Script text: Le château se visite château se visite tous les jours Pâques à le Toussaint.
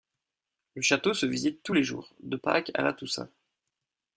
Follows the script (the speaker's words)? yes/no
no